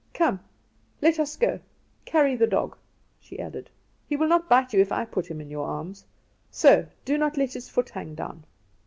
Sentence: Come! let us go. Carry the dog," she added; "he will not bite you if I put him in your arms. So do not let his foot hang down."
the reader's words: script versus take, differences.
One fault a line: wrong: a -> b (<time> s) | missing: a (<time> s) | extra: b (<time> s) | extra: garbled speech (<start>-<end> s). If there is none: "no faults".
no faults